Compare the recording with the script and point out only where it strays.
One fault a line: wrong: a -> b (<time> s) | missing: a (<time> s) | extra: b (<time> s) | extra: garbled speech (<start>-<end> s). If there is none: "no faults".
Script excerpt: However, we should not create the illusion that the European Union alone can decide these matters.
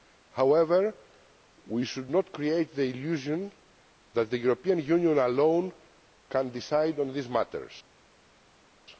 extra: on (7.0 s)